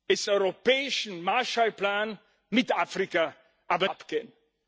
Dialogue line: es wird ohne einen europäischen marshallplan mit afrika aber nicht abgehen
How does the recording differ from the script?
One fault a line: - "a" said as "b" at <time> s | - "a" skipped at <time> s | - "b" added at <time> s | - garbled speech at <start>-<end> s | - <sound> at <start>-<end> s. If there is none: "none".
- "wird ohne einen" skipped at 0.3 s
- "nicht" skipped at 3.9 s